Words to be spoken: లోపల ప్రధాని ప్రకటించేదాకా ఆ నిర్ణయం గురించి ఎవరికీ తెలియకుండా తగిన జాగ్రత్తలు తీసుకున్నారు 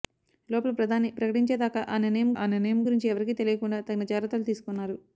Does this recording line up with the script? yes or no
no